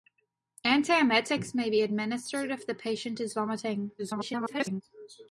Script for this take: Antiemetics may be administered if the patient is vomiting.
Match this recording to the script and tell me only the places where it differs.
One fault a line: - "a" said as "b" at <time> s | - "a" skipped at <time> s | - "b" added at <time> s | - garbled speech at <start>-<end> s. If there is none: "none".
- garbled speech at 4.0-4.8 s